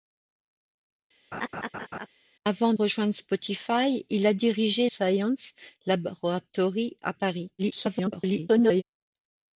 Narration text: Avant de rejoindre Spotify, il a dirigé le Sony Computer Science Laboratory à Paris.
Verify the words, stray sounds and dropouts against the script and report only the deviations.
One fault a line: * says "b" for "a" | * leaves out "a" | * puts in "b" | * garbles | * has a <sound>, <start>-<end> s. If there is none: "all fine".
* has a laugh, 1.3-2.1 s
* leaves out "de"
* leaves out "le Sony Computer"
* garbles